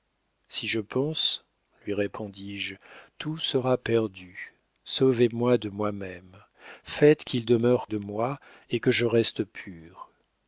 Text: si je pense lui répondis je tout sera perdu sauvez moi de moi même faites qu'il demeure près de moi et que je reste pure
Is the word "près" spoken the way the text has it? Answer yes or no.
no